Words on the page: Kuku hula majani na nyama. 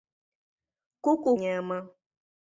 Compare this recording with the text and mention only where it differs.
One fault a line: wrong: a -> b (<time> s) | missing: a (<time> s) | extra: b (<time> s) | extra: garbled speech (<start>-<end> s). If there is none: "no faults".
missing: hula majani na (1.4 s)